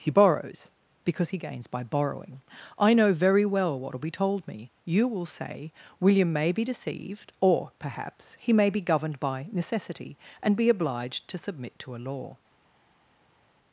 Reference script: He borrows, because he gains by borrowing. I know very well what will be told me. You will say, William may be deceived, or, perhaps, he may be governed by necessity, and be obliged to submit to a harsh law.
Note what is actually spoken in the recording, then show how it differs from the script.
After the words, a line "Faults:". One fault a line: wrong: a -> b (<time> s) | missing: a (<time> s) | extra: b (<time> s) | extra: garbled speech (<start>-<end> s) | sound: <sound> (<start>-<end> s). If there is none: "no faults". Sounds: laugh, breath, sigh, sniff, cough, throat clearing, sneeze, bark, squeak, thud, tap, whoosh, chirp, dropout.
He borrows, because he gains by borrowing. I know very well what will be told me. You will say, William may be deceived, or, perhaps, he may be governed by necessity, and be obliged to submit to a law.
Faults:
missing: harsh (12.0 s)